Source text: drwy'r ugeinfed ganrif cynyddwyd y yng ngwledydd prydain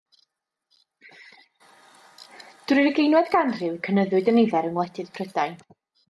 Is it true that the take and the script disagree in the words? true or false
true